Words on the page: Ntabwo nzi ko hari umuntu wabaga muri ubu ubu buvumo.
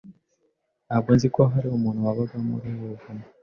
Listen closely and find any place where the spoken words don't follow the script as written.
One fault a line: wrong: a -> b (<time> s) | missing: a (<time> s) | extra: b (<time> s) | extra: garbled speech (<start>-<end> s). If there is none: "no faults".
missing: ubu (2.9 s)